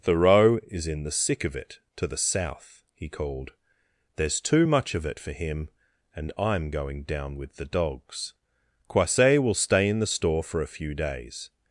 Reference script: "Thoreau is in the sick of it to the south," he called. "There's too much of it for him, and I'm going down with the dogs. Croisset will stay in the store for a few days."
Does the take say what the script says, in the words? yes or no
yes